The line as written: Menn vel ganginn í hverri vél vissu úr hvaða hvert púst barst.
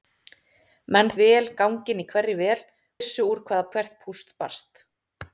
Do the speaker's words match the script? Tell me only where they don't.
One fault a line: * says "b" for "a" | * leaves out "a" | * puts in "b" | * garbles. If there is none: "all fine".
all fine